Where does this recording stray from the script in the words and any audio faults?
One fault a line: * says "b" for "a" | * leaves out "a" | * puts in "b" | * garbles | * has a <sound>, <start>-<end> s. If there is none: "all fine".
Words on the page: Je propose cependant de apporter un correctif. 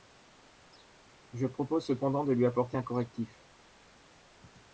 * puts in "lui"